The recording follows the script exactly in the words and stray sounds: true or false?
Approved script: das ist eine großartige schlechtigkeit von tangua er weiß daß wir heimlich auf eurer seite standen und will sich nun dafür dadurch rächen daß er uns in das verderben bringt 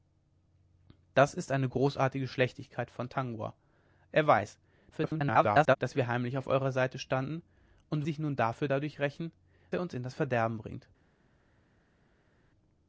false